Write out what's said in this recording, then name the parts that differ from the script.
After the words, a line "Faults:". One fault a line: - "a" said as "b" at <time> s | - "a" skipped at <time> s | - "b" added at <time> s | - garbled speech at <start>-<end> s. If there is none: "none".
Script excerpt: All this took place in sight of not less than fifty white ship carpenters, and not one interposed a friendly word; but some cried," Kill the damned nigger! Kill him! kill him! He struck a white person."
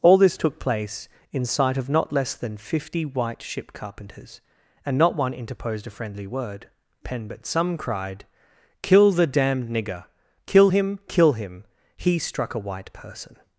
All this took place in sight of not less than fifty white ship carpenters, and not one interposed a friendly word; pen but some cried," Kill the damned nigger! Kill him! kill him! He struck a white person."
Faults:
- "pen" added at 7.0 s